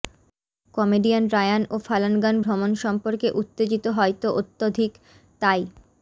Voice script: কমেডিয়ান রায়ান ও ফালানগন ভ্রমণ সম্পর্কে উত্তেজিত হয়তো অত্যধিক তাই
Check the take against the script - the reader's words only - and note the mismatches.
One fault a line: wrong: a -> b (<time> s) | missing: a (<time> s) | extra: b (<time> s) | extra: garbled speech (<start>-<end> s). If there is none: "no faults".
no faults